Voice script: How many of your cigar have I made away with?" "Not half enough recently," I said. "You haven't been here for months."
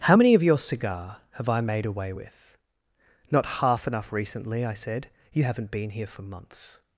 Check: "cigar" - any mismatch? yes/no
no